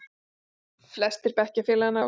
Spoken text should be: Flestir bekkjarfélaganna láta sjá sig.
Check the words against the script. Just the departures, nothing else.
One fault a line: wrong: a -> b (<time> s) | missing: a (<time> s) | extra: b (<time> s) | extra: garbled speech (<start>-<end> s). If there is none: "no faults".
missing: láta sjá (2.0 s)